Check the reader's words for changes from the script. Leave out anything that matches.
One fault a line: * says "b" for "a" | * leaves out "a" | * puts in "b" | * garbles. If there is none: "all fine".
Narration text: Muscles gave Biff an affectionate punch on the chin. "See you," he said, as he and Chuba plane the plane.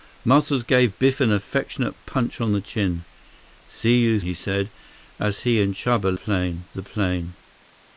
all fine